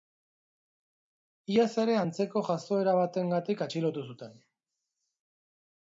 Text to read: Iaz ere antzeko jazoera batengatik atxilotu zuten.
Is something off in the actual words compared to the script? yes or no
no